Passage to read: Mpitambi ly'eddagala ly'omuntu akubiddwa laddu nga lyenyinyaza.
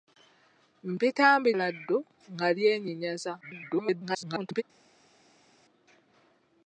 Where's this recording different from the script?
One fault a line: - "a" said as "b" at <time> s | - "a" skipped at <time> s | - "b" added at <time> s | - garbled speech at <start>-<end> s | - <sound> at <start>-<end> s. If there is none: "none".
- "ly'eddagala ly'omuntu akubiddwa" skipped at 1.5 s
- garbled speech at 3.4-4.6 s